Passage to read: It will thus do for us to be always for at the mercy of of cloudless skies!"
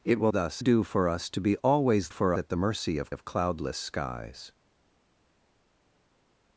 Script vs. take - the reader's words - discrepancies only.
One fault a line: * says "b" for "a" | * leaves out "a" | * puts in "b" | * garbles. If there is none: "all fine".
all fine